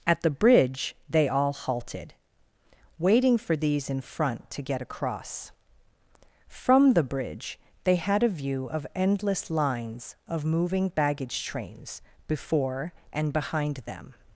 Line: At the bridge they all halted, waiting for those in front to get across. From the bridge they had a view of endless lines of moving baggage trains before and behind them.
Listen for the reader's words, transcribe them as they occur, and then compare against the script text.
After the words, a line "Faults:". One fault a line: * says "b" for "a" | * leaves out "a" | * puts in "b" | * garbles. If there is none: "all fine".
At the bridge they all halted, waiting for these in front to get across. From the bridge they had a view of endless lines of moving baggage trains before and behind them.
Faults:
* says "these" for "those"